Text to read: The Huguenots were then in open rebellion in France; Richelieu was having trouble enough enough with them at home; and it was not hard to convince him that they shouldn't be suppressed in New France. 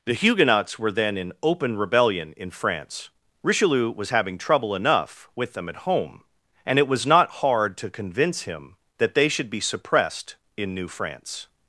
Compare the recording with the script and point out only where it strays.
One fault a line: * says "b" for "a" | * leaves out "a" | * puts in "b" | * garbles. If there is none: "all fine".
* leaves out "enough"
* says "should" for "shouldn't"